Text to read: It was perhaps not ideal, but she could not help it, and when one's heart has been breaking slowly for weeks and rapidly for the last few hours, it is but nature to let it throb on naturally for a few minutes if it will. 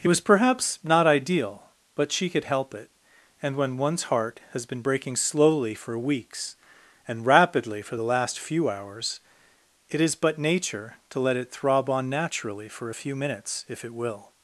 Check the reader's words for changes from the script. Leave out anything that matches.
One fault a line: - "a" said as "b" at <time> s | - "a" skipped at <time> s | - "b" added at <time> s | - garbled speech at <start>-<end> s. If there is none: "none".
- "not" skipped at 2.4 s